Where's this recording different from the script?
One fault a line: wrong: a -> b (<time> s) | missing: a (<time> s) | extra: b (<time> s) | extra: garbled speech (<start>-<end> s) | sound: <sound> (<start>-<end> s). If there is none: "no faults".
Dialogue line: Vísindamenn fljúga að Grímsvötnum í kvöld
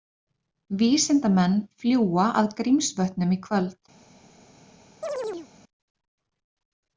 sound: chirp (5.0-5.5 s)